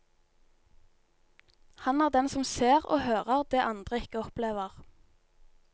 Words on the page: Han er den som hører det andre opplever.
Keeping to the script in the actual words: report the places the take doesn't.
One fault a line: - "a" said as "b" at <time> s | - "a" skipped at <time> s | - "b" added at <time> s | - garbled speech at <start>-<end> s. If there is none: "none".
- "ser og" added at 2.4 s
- "ikke" added at 4.0 s